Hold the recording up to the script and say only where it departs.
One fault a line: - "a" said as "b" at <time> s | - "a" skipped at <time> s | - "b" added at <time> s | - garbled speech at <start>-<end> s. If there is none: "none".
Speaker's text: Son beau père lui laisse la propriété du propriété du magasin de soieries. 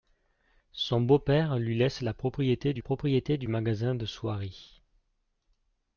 none